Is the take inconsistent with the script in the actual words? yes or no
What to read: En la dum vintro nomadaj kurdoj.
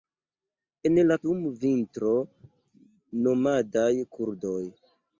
no